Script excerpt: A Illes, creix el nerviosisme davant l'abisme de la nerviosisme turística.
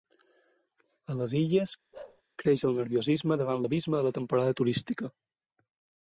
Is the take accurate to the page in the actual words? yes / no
no